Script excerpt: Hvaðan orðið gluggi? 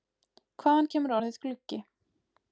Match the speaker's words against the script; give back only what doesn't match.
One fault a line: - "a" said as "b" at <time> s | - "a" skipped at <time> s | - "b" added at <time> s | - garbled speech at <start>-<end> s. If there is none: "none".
- "kemur" added at 0.9 s